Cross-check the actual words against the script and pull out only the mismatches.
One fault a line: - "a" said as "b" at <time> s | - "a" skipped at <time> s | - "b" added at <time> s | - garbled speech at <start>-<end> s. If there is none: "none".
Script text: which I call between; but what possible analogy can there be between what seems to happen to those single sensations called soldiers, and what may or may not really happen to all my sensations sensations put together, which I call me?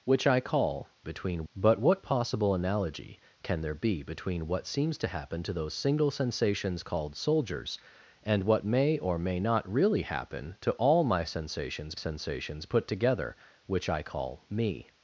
none